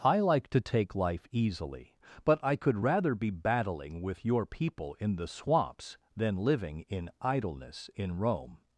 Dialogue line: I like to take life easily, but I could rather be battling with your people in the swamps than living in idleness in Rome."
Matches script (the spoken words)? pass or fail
pass